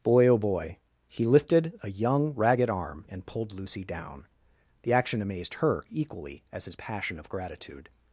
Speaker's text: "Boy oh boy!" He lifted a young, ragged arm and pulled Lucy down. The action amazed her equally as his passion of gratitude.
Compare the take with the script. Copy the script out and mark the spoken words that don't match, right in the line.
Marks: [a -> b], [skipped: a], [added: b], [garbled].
"Boy oh boy!" He lifted a young, ragged arm and pulled Lucy down. The action amazed her equally as his passion of gratitude.